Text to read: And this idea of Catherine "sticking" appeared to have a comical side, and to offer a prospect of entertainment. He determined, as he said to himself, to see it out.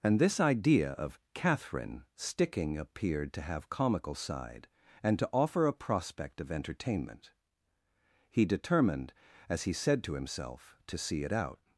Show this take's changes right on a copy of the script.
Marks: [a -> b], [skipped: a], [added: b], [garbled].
And this idea of Catherine "sticking" appeared to have [skipped: a] comical side, and to offer a prospect of entertainment. He determined, as he said to himself, to see it out.